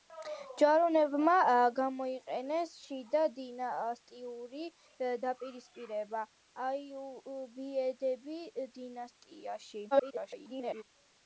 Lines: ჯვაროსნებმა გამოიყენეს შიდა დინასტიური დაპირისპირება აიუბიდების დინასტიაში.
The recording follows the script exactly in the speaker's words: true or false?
false